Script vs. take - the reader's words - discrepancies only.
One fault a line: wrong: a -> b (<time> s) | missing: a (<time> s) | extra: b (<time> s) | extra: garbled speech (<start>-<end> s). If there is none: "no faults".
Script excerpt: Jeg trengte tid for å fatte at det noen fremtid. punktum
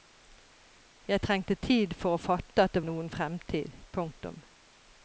no faults